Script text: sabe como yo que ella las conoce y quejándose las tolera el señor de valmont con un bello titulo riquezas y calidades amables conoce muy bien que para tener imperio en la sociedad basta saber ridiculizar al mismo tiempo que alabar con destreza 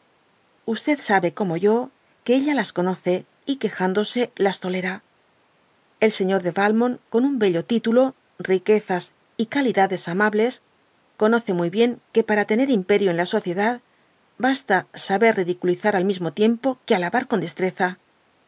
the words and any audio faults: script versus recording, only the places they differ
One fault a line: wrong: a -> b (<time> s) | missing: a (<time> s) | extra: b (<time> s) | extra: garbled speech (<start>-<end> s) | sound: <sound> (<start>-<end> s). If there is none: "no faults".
no faults